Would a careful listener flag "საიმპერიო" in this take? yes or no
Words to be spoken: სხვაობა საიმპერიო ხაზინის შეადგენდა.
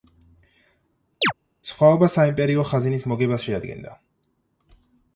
no